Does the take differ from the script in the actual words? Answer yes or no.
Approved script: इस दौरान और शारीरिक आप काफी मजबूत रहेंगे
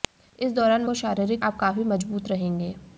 no